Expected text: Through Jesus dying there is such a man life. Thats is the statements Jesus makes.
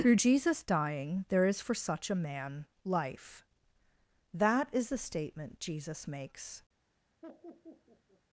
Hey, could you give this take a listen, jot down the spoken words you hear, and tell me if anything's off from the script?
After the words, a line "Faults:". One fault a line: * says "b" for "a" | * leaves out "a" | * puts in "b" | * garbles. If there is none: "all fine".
Through Jesus dying there is for such a man life. That is the statement Jesus makes.
Faults:
* puts in "for"
* says "That" for "Thats"
* says "statement" for "statements"